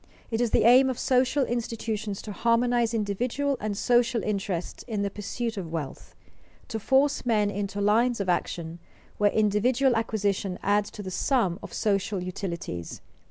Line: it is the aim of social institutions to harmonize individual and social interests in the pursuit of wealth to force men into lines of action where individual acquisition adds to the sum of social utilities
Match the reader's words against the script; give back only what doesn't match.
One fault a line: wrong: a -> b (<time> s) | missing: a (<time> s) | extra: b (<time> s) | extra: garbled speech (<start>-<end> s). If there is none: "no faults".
no faults